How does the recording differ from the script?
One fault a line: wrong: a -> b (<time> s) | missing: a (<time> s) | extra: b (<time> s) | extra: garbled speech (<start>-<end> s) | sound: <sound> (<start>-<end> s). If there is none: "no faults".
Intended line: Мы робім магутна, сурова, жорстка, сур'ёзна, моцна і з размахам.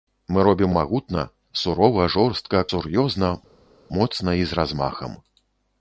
no faults